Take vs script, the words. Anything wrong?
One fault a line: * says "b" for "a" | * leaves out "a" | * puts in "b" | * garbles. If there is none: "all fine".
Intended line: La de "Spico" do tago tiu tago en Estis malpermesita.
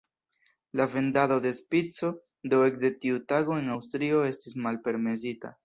* puts in "vendado"
* says "ekde" for "tago"
* puts in "Aŭstrio"